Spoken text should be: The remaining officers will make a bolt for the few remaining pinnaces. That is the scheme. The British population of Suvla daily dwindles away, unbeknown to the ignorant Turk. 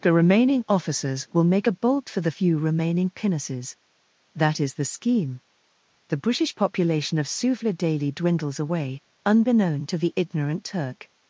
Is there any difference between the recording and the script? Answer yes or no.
no